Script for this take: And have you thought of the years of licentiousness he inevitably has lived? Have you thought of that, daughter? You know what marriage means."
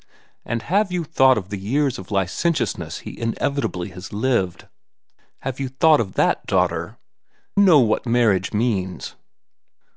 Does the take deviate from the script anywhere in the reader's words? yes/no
yes